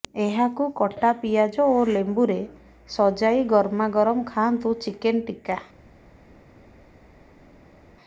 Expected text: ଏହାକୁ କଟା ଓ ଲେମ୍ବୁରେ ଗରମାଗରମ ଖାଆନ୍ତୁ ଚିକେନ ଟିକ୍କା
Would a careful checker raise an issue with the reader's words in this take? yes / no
yes